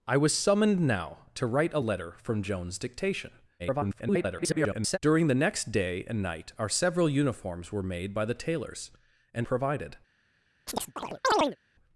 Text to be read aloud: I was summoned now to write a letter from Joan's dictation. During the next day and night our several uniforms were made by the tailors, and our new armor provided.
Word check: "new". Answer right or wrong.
wrong